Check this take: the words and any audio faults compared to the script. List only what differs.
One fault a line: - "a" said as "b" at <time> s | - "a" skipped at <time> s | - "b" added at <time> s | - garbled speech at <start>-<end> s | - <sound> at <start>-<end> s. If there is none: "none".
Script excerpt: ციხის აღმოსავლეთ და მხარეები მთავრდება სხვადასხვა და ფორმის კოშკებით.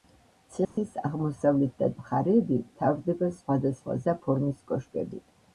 - dropout at 0.6-0.8 s